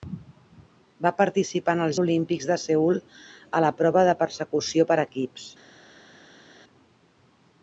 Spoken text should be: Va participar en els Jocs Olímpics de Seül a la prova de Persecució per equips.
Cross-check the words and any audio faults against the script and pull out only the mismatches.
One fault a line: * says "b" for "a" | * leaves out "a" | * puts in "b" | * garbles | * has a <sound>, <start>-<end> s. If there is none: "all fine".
* leaves out "Jocs"